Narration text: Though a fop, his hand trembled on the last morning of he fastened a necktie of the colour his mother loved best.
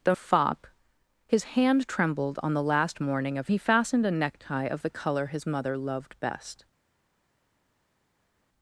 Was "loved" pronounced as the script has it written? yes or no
yes